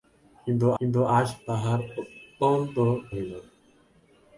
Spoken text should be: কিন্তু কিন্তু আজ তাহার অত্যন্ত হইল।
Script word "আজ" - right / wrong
right